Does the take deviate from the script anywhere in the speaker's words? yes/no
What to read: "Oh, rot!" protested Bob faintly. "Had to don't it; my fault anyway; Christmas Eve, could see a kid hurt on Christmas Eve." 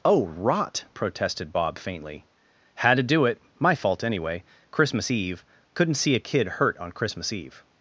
yes